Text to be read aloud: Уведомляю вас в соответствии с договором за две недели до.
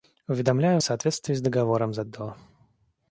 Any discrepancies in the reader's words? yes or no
yes